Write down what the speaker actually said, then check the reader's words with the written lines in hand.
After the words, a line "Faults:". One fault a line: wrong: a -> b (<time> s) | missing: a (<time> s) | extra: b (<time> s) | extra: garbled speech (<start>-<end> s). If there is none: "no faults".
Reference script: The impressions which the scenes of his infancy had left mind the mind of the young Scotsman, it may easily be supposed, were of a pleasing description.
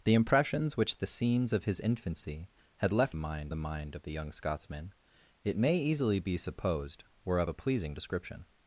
The impressions which the scenes of his infancy had left mind the mind of the young Scotsman, it may easily be supposed, were of a pleasing description.
Faults:
no faults